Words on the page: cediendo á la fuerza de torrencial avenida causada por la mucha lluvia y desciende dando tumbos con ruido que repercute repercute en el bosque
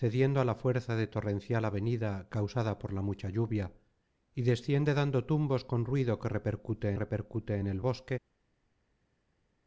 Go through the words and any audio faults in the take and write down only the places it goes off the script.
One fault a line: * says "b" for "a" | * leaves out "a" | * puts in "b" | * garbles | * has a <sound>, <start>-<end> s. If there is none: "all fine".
all fine